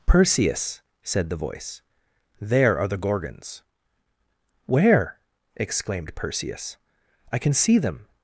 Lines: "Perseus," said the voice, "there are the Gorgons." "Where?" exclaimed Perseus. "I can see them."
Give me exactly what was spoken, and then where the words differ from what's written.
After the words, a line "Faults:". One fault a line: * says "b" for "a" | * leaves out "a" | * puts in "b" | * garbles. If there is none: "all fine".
"Perseus," said the voice, "there are the Gorgons." "Where?" exclaimed Perseus. "I can see them."
Faults:
all fine